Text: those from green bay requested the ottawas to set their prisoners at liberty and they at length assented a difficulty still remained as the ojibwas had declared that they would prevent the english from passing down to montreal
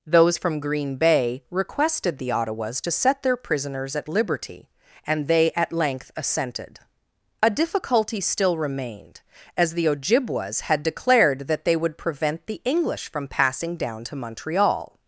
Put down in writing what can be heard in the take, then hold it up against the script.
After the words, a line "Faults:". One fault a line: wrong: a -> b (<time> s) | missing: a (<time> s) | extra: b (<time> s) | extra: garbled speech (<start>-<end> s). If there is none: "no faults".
those from green bay requested the ottawas to set their prisoners at liberty and they at length assented a difficulty still remained as the ojibwas had declared that they would prevent the english from passing down to montreal
Faults:
no faults